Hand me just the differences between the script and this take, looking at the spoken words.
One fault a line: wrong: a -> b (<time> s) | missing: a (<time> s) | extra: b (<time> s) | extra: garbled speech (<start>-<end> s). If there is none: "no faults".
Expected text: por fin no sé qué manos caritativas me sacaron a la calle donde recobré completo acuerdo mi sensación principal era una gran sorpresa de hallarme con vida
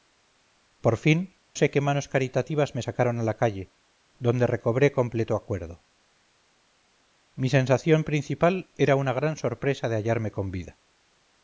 missing: no (1.2 s)